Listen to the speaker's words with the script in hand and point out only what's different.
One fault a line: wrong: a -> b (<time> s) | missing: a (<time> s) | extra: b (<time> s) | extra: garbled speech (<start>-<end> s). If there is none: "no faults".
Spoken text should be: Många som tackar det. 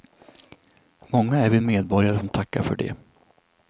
extra: är vi medborgare (1.4 s)
extra: för (2.6 s)